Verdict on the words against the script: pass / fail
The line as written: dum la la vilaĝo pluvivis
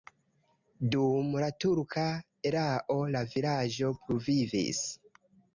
fail